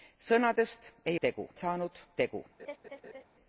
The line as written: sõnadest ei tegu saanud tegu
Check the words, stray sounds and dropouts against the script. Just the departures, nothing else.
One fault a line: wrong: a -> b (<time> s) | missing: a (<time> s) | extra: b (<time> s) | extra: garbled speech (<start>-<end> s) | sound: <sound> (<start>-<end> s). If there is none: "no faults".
sound: laugh (2.6-3.2 s)